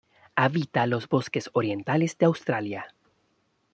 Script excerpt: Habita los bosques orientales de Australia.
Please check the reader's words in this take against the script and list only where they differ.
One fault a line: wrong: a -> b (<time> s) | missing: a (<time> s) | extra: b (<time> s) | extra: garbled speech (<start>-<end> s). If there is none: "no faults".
no faults